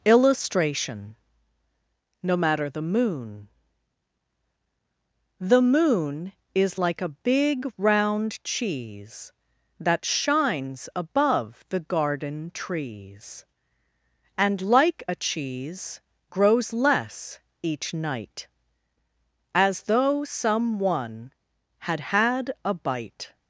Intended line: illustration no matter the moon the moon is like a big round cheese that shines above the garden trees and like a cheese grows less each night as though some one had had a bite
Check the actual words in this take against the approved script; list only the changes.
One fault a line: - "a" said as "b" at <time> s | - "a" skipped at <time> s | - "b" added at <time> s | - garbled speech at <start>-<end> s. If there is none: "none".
none